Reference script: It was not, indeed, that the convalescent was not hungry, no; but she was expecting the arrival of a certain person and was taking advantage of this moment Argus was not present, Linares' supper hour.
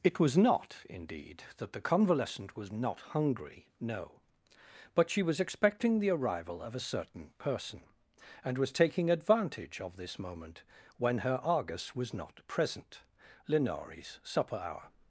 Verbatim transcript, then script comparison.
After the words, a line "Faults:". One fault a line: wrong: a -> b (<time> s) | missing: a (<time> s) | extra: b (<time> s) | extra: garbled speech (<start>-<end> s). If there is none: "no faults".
It was not, indeed, that the convalescent was not hungry, no; but she was expecting the arrival of a certain person and was taking advantage of this moment when her Argus was not present, Linares' supper hour.
Faults:
extra: when her (11.0 s)